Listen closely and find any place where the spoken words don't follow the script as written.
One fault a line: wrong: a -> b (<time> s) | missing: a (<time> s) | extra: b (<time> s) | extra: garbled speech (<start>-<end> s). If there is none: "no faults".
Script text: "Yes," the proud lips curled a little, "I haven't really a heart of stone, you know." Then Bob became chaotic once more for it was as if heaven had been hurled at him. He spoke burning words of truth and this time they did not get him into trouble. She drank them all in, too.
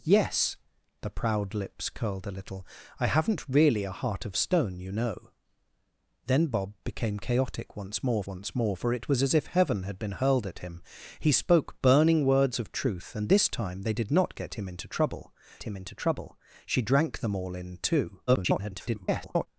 extra: once more (8.3 s)
extra: him into trouble (15.6 s)
extra: garbled speech (18.3-19.5 s)